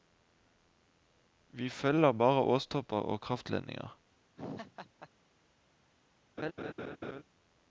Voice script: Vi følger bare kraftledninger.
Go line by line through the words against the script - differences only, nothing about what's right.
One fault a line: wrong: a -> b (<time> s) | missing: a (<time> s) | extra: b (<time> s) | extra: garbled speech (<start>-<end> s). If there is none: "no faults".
extra: åstopper og (2.4 s)